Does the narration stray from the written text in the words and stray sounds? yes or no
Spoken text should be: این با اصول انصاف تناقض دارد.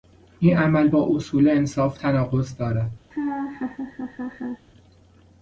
yes